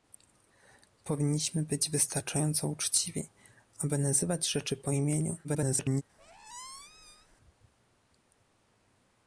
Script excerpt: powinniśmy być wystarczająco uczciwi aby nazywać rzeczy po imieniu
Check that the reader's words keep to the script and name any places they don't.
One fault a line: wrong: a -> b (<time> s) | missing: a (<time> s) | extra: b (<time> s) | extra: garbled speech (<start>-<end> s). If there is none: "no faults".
extra: garbled speech (5.4-6.0 s)